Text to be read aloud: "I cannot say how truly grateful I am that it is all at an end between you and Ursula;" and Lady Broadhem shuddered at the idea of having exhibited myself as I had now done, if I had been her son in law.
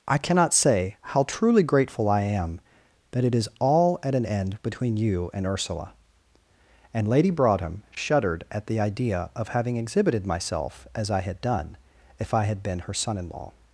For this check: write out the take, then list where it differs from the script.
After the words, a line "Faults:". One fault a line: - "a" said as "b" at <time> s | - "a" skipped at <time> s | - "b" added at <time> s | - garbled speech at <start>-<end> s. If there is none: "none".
"I cannot say how truly grateful I am that it is all at an end between you and Ursula;" and Lady Broadhem shuddered at the idea of having exhibited myself as I had done, if I had been her son in law.
Faults:
- "now" skipped at 11.4 s